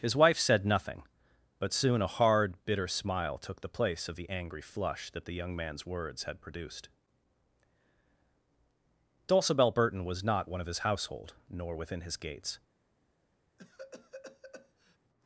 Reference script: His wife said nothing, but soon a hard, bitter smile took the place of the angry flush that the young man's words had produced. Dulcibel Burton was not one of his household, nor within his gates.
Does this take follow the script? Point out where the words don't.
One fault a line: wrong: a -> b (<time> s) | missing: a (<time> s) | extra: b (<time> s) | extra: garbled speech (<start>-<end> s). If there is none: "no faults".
no faults